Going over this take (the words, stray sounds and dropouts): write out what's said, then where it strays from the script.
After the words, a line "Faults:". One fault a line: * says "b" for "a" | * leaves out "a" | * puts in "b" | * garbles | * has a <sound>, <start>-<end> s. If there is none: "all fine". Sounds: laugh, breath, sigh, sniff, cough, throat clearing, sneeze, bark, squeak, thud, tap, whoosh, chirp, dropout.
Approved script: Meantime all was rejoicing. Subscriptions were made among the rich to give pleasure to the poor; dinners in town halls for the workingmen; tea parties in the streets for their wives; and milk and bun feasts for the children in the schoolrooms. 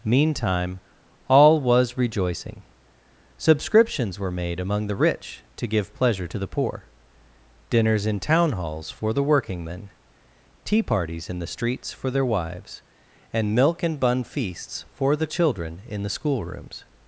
Meantime all was rejoicing. Subscriptions were made among the rich to give pleasure to the poor; dinners in town halls for the workingmen; tea parties in the streets for their wives; and milk and bun feasts for the children in the schoolrooms.
Faults:
all fine